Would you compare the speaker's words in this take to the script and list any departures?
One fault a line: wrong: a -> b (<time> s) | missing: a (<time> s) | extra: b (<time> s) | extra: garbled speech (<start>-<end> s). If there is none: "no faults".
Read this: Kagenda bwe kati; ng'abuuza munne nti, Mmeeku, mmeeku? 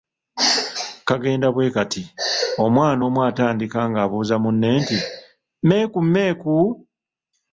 extra: omwana omu atandika (2.6 s)